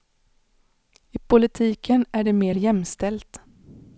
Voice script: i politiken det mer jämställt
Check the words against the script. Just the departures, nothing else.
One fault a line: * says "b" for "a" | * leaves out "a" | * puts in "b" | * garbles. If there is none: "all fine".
* puts in "är"